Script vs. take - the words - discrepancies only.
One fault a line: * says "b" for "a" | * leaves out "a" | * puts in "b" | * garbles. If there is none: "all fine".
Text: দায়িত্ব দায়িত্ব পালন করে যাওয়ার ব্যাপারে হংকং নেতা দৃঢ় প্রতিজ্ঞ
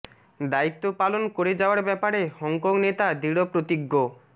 * leaves out "দায়িত্ব"